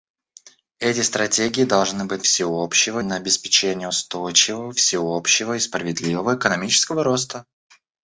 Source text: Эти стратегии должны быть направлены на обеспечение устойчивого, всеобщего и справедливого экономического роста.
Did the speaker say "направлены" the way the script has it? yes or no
no